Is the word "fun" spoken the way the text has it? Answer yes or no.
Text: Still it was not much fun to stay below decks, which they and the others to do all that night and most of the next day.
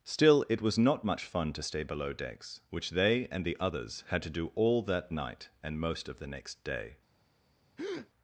yes